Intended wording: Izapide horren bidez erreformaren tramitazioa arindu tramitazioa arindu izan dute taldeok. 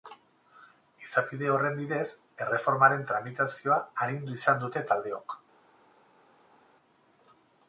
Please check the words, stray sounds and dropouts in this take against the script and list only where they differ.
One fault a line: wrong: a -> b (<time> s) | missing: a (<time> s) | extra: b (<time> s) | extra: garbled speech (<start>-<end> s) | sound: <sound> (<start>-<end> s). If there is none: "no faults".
missing: tramitazioa arindu (4.4 s)